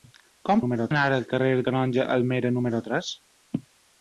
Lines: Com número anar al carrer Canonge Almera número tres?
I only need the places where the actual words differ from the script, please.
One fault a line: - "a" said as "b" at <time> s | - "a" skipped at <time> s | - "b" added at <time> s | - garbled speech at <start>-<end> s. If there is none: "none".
none